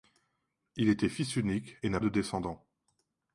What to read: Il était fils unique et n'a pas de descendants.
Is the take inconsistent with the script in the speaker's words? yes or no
yes